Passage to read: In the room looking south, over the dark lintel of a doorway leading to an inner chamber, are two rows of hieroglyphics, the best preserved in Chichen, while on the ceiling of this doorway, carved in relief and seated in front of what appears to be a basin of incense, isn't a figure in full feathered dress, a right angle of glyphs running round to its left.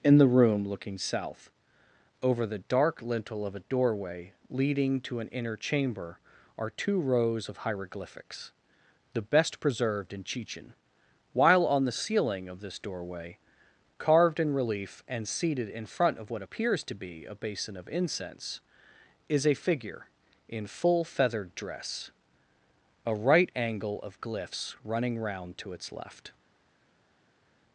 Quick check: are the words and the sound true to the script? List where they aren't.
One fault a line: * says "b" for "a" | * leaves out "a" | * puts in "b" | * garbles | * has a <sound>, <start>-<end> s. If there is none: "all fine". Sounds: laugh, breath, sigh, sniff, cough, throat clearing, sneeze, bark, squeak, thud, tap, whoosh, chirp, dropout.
* says "is" for "isn't"